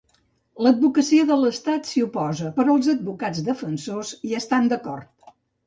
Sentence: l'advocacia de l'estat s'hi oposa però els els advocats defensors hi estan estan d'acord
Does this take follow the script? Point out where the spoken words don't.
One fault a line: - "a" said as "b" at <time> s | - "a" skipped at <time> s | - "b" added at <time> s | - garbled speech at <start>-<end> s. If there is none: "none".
- "els" skipped at 2.9 s
- "estan" skipped at 4.7 s